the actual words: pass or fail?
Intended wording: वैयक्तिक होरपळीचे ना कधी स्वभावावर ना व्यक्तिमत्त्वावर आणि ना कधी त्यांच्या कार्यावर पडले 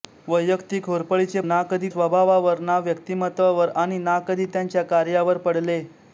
pass